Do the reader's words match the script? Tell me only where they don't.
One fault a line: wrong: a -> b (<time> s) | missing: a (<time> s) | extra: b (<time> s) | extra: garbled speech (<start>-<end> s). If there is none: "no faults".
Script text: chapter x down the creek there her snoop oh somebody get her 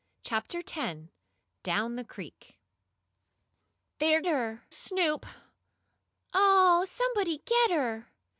no faults